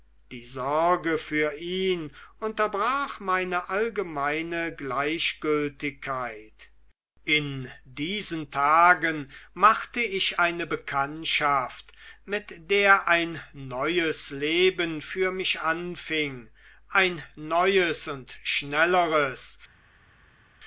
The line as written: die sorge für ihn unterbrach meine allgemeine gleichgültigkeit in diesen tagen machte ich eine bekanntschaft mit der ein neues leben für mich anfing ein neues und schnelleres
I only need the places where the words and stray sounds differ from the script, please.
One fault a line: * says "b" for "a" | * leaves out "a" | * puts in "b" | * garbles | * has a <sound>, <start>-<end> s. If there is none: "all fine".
all fine